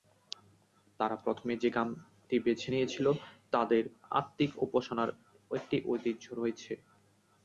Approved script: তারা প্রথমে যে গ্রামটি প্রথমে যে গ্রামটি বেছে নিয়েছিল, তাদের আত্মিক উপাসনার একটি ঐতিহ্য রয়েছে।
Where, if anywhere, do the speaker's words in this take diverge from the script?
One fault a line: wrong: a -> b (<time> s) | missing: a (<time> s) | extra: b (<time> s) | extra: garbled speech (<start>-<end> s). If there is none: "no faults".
missing: প্রথমে যে গ্রামটি (2.4 s)